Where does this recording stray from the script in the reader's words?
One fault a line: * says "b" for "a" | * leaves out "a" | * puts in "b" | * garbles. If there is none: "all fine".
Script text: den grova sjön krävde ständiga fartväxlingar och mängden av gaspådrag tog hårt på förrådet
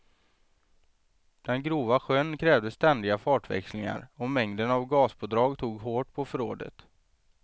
all fine